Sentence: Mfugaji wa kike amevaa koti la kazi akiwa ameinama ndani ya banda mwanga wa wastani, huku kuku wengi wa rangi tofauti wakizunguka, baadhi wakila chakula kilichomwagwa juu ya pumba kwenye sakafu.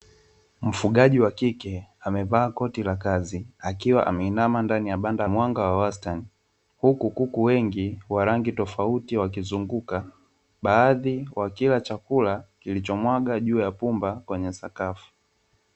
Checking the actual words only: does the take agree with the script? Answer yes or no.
yes